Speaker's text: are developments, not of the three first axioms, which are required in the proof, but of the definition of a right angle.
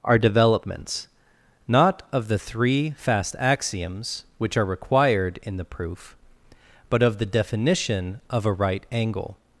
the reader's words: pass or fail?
fail